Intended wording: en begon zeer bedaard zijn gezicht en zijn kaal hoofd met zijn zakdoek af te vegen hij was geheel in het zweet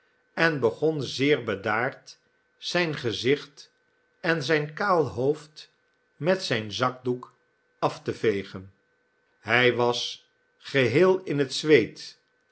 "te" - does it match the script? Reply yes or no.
yes